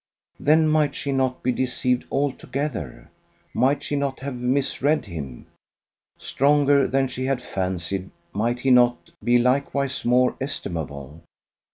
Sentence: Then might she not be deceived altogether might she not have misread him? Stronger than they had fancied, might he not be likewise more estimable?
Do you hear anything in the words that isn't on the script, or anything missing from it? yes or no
yes